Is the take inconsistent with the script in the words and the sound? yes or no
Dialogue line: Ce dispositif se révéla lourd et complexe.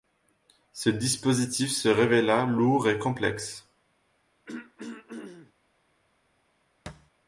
yes